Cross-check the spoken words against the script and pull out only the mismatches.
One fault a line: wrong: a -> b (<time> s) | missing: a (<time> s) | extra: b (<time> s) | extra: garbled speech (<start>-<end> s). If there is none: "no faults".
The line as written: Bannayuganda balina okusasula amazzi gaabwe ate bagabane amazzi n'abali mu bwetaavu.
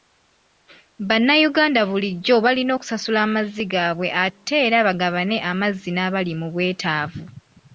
extra: bulijjo (1.9 s)
extra: era (4.7 s)